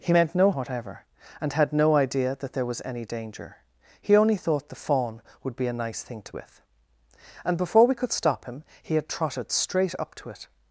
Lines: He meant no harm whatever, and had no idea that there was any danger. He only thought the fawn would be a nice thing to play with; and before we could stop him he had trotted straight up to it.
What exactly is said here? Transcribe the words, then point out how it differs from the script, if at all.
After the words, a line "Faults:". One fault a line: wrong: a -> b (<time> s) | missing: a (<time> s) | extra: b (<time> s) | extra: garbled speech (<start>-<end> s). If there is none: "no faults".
He meant no whatever, and had no idea that there was any danger. He only thought the fawn would be a nice thing to with; and before we could stop him he had trotted straight up to it.
Faults:
missing: harm (0.5 s)
missing: play (6.3 s)